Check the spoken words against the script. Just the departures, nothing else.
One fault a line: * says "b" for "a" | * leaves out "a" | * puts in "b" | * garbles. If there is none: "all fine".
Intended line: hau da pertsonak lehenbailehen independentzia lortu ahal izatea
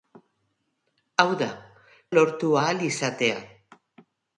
* leaves out "pertsonak lehenbailehen independentzia"